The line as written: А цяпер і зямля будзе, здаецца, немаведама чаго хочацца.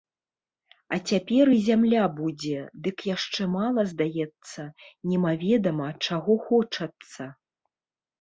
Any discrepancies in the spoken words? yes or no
yes